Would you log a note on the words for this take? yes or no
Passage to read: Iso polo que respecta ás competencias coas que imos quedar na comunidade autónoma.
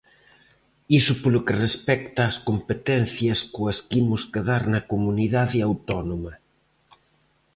no